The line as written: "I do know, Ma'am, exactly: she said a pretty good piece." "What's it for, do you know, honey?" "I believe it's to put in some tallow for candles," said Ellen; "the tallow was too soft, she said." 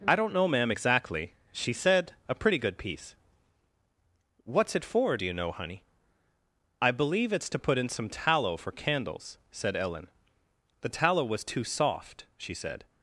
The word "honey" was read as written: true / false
true